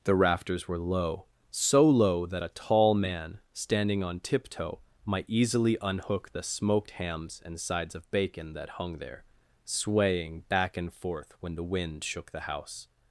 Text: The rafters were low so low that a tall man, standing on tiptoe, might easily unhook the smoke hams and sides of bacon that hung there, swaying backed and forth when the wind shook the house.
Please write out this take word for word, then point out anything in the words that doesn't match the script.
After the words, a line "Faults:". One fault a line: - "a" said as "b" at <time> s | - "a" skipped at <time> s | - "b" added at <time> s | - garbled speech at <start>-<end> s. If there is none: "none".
The rafters were low so low that a tall man, standing on tiptoe, might easily unhook the smoked hams and sides of bacon that hung there, swaying back and forth when the wind shook the house.
Faults:
- "smoke" said as "smoked" at 6.4 s
- "backed" said as "back" at 10.5 s